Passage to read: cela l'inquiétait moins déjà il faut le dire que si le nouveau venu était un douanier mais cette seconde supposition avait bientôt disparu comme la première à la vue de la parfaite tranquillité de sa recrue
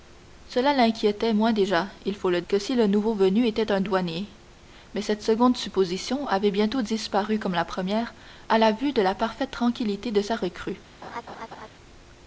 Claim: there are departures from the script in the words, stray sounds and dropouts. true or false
true